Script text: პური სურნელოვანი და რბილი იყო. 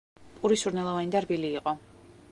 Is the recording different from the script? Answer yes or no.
no